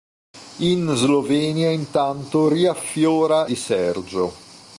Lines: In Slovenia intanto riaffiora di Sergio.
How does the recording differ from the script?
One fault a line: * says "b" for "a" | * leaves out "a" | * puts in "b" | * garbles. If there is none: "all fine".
all fine